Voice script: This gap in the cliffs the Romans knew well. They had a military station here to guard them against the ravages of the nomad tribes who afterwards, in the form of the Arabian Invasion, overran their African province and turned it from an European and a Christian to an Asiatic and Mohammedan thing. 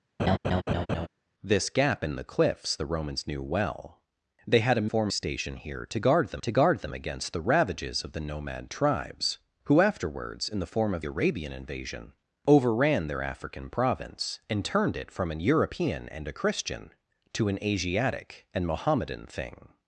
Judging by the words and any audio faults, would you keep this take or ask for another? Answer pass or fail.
fail